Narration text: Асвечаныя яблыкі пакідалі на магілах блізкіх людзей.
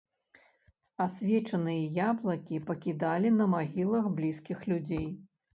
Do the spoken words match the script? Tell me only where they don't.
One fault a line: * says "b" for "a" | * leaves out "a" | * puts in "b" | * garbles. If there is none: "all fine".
all fine